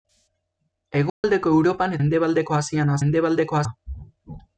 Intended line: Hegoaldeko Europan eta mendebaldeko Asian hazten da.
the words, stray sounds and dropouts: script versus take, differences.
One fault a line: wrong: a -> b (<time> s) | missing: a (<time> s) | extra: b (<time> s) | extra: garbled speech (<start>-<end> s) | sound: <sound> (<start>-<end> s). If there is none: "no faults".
sound: dropout (1.1-1.2 s)
missing: eta (1.9 s)
wrong: hazten -> mendebaldeko (3.0 s)